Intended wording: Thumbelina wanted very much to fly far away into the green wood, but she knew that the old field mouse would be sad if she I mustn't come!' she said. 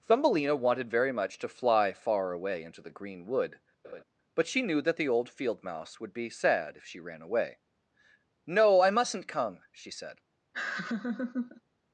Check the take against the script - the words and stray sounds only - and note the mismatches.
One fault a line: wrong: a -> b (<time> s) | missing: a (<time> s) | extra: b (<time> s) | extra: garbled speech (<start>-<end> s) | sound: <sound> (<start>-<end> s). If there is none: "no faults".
sound: laugh (3.8-4.0 s)
extra: ran away No (7.0 s)
sound: laugh (10.5-11.6 s)